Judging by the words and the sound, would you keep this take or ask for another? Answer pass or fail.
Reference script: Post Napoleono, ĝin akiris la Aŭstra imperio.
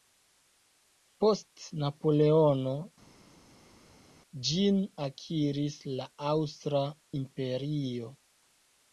pass